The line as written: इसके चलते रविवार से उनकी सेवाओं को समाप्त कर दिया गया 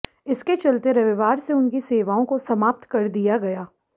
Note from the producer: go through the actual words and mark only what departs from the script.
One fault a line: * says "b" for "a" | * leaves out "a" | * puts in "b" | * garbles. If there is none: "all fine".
all fine